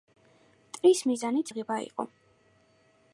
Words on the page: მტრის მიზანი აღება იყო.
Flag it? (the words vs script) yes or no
no